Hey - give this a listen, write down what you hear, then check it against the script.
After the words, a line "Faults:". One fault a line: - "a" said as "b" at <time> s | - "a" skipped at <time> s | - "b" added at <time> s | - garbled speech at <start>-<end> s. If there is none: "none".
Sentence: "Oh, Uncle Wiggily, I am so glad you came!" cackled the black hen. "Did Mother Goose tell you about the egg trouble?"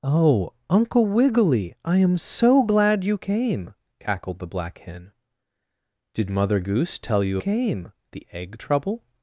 "Oh, Uncle Wiggily, I am so glad you came!" cackled the black hen. "Did Mother Goose tell you came the egg trouble?"
Faults:
- "about" said as "came" at 7.4 s